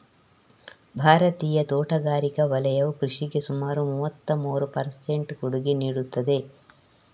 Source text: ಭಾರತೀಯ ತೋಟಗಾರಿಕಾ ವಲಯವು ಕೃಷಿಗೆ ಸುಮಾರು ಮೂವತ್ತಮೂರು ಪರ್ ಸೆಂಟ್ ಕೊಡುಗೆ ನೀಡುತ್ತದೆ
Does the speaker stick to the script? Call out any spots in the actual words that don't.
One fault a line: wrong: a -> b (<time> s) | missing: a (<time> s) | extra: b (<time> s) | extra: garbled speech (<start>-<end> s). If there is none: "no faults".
no faults